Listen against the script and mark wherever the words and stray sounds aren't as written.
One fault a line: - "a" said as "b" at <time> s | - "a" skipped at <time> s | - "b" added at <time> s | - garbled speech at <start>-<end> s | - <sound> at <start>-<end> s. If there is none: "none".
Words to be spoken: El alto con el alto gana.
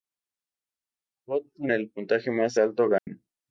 - "alto" said as "robot" at 1.3 s
- "puntaje más" added at 1.9 s
- dropout at 3.0-3.1 s